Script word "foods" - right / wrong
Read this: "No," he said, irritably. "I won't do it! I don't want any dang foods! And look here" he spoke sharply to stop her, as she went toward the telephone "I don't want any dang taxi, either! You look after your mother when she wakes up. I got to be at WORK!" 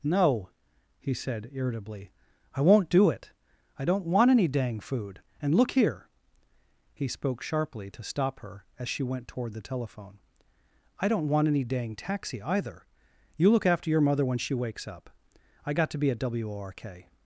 wrong